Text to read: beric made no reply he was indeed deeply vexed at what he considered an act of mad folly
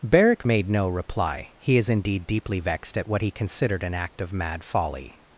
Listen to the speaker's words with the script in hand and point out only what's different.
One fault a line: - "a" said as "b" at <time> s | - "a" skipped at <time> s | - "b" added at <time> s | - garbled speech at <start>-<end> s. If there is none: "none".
- "was" said as "is" at 1.8 s